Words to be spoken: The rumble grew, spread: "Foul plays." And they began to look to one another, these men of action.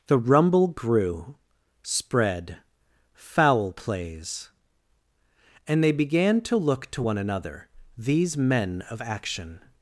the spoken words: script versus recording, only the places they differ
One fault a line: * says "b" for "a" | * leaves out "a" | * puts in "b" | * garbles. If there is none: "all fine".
all fine